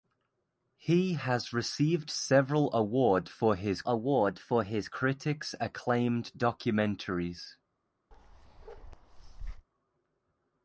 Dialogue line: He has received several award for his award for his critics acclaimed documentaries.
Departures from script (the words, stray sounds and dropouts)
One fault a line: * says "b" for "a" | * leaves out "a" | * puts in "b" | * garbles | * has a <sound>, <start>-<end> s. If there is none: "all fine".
* has a bark, 8.1-9.7 s